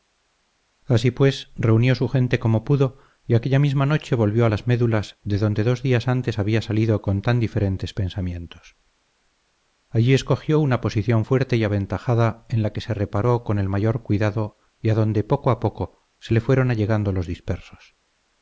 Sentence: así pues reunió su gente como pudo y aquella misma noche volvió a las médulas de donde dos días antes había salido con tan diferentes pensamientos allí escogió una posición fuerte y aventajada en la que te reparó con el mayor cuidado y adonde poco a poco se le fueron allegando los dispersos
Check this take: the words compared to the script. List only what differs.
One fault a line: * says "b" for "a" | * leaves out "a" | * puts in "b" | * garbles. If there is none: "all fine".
* says "se" for "te"